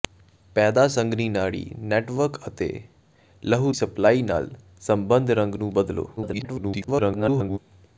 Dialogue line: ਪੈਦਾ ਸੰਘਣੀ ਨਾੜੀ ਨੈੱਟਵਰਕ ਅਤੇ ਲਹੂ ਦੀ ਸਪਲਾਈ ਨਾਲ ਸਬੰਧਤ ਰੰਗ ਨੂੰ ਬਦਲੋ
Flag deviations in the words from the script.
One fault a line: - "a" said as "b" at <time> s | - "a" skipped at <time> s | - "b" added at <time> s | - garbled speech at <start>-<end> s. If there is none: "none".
- "ਦੀ" skipped at 3.7 s
- garbled speech at 6.2-7.6 s